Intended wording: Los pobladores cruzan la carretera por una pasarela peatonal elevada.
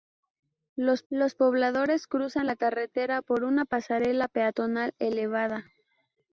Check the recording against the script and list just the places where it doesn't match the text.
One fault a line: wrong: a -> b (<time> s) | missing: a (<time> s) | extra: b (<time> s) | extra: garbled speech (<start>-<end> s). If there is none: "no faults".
extra: los (1.1 s)